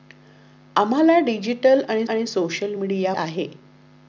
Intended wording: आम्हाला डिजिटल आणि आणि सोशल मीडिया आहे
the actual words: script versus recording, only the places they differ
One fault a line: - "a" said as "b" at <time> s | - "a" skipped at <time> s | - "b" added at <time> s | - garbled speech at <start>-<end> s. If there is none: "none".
none